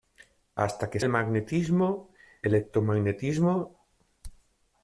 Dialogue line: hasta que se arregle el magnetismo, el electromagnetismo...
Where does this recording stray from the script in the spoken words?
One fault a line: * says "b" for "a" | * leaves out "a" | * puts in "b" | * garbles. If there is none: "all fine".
* leaves out "se arregle"
* leaves out "el"